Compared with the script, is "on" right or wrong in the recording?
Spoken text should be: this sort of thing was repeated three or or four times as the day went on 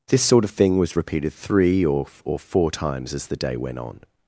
right